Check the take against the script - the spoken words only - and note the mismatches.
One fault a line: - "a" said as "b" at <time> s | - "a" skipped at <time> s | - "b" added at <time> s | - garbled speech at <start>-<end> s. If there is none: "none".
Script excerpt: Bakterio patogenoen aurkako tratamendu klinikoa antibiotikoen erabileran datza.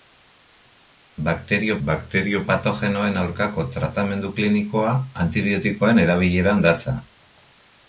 - "bakterio" added at 1.9 s